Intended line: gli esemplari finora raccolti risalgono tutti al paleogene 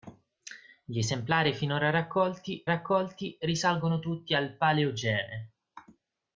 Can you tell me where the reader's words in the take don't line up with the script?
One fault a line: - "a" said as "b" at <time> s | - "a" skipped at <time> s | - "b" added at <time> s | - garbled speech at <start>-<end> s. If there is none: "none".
- "raccolti" added at 2.7 s